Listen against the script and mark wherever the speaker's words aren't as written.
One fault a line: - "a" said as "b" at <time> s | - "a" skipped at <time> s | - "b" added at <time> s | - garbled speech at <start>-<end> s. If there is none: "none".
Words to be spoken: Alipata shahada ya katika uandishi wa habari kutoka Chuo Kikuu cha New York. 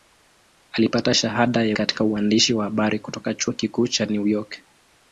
none